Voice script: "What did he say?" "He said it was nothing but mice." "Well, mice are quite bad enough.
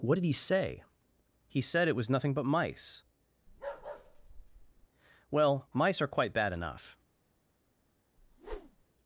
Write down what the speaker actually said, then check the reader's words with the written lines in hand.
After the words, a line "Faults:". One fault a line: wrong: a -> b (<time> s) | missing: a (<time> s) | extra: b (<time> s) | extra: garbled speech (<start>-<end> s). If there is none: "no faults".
"What did he say?" "He said it was nothing but mice." "Well, mice are quite bad enough.
Faults:
no faults